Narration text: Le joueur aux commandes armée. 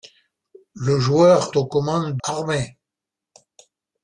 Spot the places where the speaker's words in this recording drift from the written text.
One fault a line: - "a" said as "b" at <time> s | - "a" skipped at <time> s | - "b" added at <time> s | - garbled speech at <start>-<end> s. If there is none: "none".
none